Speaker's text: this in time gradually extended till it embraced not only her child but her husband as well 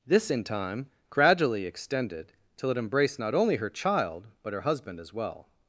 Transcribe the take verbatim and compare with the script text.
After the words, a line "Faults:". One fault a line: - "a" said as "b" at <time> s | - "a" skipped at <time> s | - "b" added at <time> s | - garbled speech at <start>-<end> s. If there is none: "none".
this in time gradually extended till it embraced not only her child but her husband as well
Faults:
none